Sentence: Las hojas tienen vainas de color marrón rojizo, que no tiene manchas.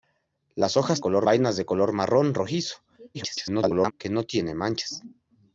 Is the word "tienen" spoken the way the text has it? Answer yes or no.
no